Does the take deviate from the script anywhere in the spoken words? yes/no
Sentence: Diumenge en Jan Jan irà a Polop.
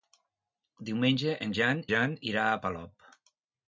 no